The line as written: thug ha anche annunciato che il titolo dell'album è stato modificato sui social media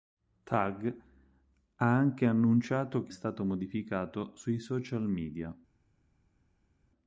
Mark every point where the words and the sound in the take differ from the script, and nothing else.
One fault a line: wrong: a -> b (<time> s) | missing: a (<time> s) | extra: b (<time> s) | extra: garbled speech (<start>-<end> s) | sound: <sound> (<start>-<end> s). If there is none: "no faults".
missing: il titolo dell'album (3.1 s)